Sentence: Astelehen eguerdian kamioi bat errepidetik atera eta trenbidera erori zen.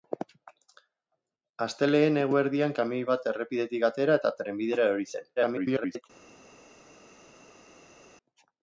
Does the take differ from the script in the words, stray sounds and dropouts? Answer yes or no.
yes